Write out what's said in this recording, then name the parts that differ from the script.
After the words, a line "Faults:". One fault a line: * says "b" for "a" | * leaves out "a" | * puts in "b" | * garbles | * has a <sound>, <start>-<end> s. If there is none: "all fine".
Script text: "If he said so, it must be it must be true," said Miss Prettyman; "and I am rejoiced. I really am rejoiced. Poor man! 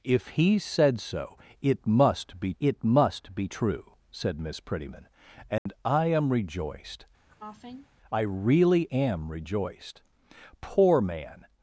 "If he said so, it must be it must be true," said Miss Prettyman; "and I am rejoiced. I really am rejoiced. Poor man!
Faults:
* has a dropout, 5.6-5.7 s
* has a cough, 7.3-7.9 s